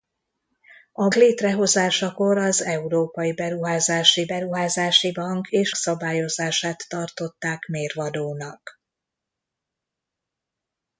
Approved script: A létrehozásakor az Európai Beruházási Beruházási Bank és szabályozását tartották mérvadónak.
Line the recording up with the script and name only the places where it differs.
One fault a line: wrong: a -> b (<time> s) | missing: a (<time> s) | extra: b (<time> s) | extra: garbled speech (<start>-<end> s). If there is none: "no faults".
no faults